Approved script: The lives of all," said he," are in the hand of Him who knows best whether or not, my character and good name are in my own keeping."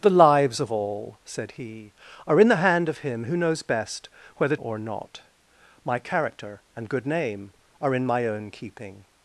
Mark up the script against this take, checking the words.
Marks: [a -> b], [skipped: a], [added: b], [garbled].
The lives of all," said he," are in the hand of Him who knows best whether or not, my character and good name are in my own keeping."